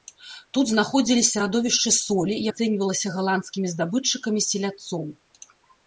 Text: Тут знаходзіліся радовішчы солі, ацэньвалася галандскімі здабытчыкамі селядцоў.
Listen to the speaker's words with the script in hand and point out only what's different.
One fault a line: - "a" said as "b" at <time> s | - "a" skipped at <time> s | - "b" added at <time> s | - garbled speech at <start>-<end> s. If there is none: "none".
none